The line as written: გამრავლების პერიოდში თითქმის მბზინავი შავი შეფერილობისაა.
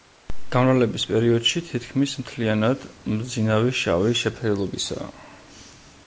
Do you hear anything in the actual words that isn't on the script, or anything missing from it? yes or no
yes